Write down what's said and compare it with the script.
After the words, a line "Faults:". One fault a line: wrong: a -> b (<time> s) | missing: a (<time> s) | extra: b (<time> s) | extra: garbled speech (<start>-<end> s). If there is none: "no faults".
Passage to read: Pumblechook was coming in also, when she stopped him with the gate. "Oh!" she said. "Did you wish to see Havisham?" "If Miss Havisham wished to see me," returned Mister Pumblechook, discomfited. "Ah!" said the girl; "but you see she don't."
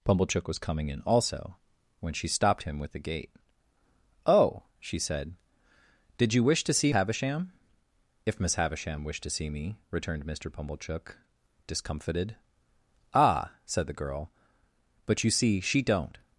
Pumblechook was coming in also, when she stopped him with the gate. "Oh!" she said. "Did you wish to see Havisham?" "If Miss Havisham wished to see me," returned Mister Pumblechook, discomfited. "Ah!" said the girl; "but you see she don't."
Faults:
no faults